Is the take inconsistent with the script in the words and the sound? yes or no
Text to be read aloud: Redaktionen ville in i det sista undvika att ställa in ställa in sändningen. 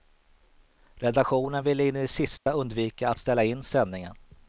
yes